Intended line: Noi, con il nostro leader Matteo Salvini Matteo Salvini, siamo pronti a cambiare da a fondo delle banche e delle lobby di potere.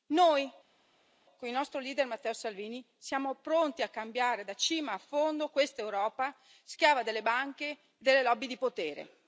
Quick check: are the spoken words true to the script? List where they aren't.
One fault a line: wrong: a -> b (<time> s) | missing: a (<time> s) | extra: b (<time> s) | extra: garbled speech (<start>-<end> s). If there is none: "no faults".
missing: Matteo Salvini (2.8 s)
extra: cima (4.5 s)
extra: questa Europa schiava (5.5 s)